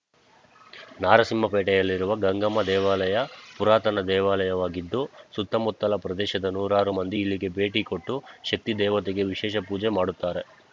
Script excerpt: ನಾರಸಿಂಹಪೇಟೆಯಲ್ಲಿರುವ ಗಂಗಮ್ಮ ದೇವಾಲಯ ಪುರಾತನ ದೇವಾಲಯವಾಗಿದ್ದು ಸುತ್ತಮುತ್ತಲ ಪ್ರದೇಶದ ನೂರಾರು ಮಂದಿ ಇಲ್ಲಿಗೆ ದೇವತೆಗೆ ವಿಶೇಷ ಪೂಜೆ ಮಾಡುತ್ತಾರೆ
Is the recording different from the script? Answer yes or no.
yes